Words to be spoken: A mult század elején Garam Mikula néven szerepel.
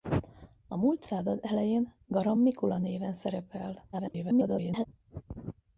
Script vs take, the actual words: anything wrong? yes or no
yes